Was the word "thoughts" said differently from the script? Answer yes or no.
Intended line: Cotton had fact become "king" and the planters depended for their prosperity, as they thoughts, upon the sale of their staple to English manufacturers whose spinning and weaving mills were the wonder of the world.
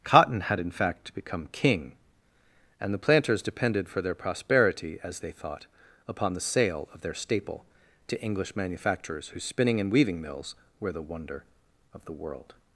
yes